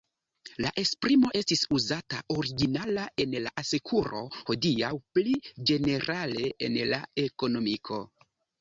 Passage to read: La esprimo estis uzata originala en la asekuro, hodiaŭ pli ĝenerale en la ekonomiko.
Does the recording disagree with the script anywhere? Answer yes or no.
no